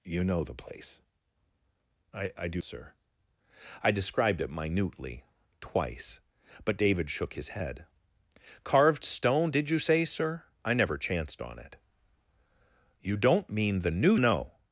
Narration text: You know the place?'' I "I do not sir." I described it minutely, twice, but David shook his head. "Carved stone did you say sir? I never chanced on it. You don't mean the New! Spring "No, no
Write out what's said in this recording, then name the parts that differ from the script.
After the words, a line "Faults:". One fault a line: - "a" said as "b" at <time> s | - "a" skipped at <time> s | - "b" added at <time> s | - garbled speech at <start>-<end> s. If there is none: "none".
You know the place?'' I "I do sir." I described it minutely, twice, but David shook his head. "Carved stone did you say sir? I never chanced on it. You don't mean the New! No
Faults:
- "not" skipped at 2.6 s
- "Spring No" skipped at 14.2 s